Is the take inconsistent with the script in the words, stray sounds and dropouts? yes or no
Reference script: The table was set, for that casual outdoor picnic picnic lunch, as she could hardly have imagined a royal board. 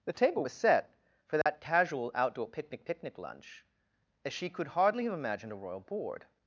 yes